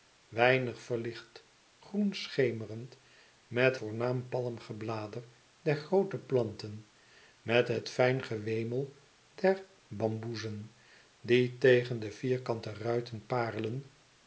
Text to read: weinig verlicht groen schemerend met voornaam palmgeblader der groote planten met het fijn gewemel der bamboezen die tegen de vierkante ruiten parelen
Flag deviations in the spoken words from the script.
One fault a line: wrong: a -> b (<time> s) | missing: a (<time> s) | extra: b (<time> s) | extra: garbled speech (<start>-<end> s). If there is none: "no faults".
no faults